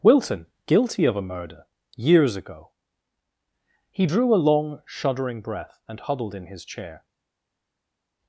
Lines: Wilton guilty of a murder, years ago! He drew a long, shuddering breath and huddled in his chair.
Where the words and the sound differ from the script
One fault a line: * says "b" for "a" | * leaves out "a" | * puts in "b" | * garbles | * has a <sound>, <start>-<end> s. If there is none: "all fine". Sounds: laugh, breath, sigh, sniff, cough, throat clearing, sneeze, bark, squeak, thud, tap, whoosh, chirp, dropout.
all fine